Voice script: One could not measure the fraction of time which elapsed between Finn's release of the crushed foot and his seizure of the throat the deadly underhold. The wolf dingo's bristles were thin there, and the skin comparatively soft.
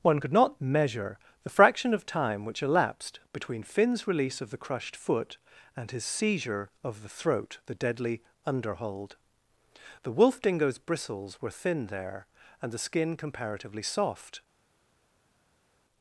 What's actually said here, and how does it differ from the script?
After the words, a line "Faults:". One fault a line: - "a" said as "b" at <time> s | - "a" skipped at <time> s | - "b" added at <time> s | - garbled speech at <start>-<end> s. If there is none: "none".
One could not measure the fraction of time which elapsed between Finn's release of the crushed foot and his seizure of the throat the deadly underhold. The wolf dingo's bristles were thin there, and the skin comparatively soft.
Faults:
none